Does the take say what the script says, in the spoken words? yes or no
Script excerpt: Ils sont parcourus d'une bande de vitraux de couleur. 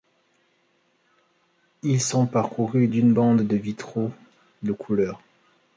yes